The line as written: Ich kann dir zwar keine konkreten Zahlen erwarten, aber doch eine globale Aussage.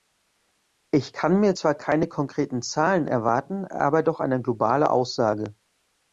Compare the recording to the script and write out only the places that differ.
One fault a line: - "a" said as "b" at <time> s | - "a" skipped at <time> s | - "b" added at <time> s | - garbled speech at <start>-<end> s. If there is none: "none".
- "dir" said as "mir" at 1.4 s